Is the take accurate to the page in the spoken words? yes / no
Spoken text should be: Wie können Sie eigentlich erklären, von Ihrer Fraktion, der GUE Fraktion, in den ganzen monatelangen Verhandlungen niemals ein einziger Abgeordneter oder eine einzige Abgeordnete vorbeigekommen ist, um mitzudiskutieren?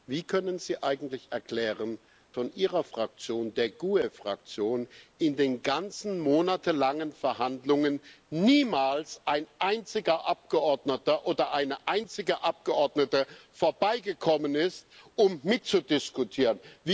yes